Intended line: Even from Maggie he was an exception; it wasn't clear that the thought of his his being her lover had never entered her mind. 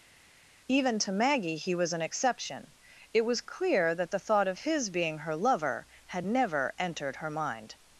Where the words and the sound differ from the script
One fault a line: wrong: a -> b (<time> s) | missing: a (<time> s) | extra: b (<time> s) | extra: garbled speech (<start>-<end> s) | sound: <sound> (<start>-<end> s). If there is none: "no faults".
wrong: from -> to (1.0 s)
wrong: wasn't -> was (3.2 s)
missing: his (4.9 s)